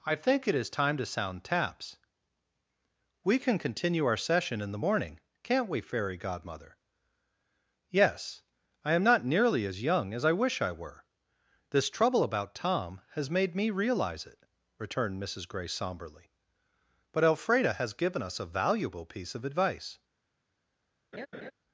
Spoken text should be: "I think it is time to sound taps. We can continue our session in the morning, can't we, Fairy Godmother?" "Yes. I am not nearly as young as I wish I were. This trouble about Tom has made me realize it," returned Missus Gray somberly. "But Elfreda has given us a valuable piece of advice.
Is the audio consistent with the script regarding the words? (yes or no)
yes